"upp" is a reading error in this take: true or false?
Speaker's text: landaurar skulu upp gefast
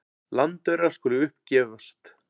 false